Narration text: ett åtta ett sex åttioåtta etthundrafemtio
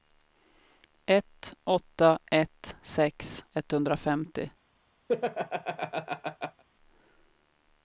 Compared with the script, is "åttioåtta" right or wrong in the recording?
wrong